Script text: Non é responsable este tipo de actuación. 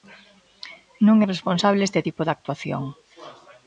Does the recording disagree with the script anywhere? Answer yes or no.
no